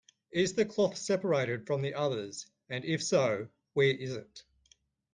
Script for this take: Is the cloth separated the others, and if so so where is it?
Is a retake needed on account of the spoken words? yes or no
yes